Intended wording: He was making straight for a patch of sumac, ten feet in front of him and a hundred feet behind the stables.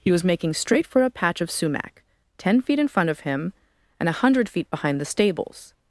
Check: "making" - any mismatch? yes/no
no